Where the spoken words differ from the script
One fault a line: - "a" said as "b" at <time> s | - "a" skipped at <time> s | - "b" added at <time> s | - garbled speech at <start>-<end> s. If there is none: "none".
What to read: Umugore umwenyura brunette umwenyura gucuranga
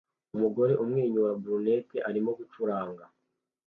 - "umwenyura" said as "arimo" at 2.1 s